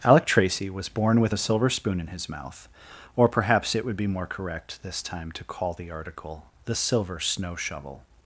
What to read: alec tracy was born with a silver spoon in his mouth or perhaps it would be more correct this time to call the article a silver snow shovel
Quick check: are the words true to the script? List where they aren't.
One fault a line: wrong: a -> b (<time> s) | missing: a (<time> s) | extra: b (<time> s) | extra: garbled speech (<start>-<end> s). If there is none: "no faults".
wrong: a -> the (6.7 s)